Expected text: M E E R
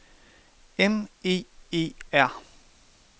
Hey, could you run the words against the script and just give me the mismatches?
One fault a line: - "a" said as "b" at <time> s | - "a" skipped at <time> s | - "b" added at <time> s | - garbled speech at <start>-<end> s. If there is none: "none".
none